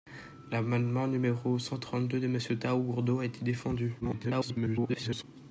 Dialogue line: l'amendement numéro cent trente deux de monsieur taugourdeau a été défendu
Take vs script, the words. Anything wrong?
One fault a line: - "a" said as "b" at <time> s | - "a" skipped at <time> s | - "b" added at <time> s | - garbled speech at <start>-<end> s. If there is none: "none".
- garbled speech at 4.0-5.2 s